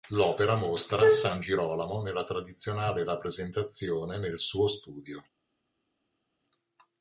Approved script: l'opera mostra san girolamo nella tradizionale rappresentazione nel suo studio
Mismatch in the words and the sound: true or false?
false